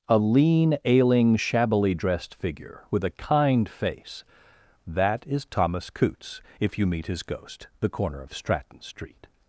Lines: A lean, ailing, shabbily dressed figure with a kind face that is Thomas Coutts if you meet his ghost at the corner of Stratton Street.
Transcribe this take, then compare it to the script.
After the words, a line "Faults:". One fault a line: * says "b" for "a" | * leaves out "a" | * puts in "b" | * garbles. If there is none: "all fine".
A lean, ailing, shabbily dressed figure with a kind face that is Thomas Coutts if you meet his ghost the corner of Stratton Street.
Faults:
* leaves out "at"